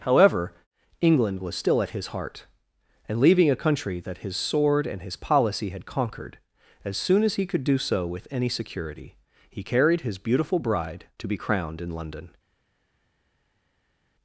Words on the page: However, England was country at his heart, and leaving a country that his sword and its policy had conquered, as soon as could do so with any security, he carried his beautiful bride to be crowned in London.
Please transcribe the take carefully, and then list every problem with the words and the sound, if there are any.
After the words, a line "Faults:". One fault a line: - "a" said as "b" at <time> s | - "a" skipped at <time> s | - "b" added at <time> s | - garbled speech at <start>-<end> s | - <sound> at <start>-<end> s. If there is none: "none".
However, England was still at his heart, and leaving a country that his sword and his policy had conquered, as soon as he could do so with any security, he carried his beautiful bride to be crowned in London.
Faults:
- "country" said as "still" at 1.6 s
- "its" said as "his" at 5.0 s
- "he" added at 7.3 s